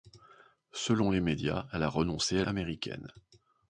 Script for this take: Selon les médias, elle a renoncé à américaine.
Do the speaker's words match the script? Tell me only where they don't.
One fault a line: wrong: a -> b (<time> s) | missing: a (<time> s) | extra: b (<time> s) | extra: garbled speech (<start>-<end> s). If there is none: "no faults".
no faults